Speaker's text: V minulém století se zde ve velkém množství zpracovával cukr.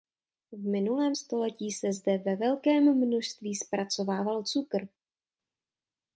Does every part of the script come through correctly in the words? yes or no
yes